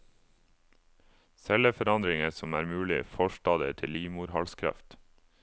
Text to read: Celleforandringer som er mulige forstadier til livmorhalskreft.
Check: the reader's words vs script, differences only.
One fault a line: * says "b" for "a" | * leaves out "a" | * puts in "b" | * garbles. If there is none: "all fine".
all fine